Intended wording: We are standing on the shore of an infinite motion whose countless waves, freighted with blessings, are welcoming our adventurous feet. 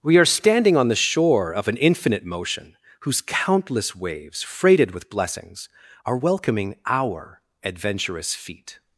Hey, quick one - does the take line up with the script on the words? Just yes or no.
yes